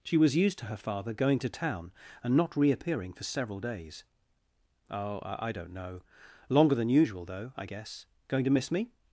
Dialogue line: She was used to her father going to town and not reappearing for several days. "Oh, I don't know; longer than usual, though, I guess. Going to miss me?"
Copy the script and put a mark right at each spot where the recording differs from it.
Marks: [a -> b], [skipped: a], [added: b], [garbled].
She was used to her father going to town and not reappearing for several days. "Oh, I don't know; longer than usual, though, I guess. Going to miss me?"